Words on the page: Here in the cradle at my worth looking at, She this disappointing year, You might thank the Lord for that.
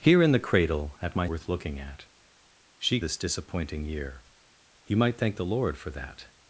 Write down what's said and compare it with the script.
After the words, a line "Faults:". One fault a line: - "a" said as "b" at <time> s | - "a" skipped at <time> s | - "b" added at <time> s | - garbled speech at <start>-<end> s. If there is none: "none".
Here in the cradle at my worth looking at, She this disappointing year, You might thank the Lord for that.
Faults:
none